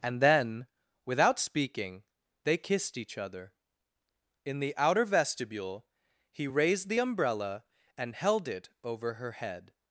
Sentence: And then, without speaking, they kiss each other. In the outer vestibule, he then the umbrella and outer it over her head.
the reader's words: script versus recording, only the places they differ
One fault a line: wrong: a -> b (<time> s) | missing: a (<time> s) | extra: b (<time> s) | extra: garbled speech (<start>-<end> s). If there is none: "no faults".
wrong: kiss -> kissed (2.6 s)
wrong: then -> raised (6.5 s)
wrong: outer -> held (8.1 s)